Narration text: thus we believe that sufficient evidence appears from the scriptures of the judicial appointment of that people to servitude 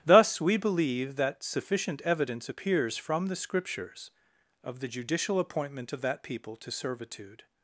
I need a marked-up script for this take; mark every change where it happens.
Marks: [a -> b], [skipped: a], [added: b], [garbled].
thus we believe that sufficient evidence appears from the scriptures of the judicial appointment of that people to servitude